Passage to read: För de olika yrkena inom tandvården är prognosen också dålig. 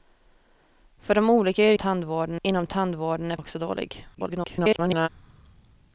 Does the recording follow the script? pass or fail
fail